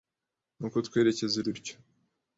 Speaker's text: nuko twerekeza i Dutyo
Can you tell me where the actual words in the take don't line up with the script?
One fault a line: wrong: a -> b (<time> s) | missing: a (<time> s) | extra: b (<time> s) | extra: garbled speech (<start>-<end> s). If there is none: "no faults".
no faults